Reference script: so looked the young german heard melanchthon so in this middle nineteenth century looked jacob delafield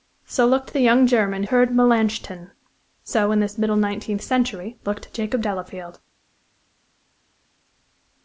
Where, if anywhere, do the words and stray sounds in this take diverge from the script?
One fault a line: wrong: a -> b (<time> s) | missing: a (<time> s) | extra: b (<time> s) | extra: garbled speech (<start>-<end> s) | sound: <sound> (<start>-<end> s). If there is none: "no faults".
no faults